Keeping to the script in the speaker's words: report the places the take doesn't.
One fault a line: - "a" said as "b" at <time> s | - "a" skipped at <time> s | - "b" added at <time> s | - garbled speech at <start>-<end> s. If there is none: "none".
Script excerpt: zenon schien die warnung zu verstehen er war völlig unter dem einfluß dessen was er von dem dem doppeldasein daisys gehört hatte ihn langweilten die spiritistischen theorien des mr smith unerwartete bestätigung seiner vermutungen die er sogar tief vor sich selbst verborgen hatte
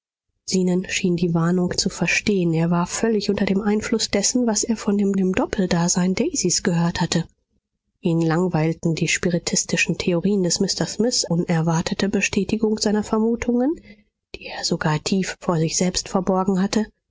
none